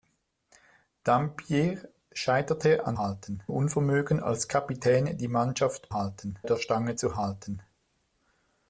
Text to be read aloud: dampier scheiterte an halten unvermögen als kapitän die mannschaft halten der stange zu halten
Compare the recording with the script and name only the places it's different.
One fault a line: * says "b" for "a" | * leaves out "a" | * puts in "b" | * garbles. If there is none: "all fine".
all fine